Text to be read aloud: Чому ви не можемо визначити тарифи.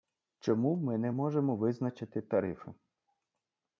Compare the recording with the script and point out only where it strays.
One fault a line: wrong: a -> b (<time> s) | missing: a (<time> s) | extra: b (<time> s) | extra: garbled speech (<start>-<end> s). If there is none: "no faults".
wrong: ви -> ми (0.8 s)